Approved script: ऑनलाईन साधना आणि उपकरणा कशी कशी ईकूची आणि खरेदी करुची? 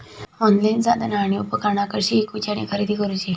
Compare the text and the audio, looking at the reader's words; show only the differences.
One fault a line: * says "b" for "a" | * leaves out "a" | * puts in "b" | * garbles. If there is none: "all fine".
* leaves out "कशी"